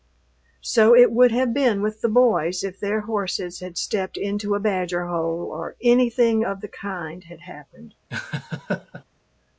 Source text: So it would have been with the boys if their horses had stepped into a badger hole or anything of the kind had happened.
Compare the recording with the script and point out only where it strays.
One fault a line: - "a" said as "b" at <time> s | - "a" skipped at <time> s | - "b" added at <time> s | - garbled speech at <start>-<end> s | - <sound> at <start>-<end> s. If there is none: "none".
- laugh at 8.1-9.0 s